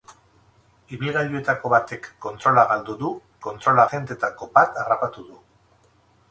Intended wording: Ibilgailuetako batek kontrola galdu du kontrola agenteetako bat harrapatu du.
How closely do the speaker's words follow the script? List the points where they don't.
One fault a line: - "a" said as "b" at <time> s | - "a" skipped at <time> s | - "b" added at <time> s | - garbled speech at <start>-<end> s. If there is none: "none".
none